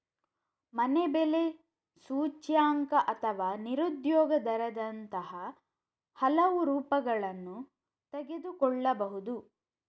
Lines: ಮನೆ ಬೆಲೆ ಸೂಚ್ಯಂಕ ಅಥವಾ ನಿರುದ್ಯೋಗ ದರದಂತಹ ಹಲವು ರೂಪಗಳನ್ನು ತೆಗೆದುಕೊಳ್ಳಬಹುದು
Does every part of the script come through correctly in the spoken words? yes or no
yes